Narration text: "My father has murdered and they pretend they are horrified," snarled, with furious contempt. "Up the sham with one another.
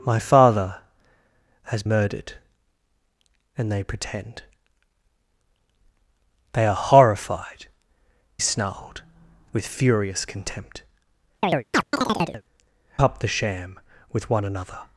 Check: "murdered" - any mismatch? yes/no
no